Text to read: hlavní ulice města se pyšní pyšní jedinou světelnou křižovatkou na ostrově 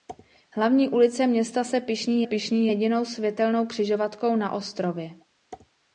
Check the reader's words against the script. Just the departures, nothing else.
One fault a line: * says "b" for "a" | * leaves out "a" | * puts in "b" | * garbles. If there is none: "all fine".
all fine